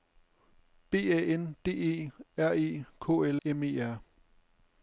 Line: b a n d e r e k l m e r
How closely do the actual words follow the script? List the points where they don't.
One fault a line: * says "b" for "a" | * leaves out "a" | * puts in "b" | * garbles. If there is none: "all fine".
all fine